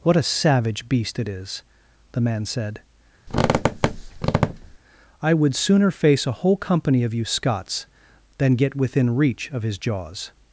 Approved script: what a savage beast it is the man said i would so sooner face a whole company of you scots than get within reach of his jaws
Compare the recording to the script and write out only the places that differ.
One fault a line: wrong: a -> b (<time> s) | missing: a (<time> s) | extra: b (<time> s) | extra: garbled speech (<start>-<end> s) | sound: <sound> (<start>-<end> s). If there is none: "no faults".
sound: squeak (3.3-4.8 s)
missing: so (5.5 s)